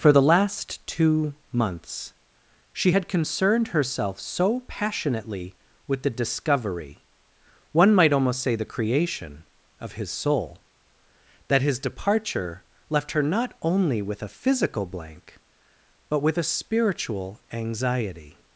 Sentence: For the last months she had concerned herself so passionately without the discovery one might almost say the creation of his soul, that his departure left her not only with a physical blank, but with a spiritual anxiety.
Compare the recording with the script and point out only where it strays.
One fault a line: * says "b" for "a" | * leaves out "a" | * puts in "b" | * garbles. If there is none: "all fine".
* puts in "two"
* says "with" for "without"